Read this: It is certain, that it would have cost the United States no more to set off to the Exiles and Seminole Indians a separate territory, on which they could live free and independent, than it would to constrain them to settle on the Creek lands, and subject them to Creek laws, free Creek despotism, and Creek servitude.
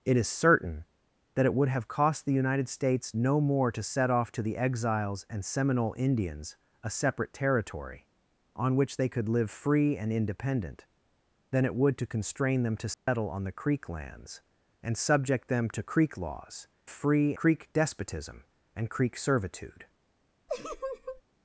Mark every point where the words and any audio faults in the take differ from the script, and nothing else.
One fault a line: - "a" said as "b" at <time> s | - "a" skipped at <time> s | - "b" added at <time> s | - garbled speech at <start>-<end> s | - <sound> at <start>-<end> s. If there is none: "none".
- dropout at 12.9-13.1 s
- laugh at 20.5-21.2 s